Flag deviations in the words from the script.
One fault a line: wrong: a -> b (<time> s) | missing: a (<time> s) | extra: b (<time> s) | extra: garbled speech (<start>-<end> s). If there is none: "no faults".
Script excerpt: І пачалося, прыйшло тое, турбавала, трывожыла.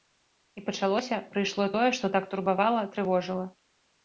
extra: што так (2.0 s)